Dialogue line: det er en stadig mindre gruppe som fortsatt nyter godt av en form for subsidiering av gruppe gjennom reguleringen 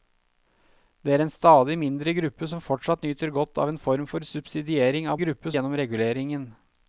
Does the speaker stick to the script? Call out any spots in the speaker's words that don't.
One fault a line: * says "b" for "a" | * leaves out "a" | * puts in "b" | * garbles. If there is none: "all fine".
all fine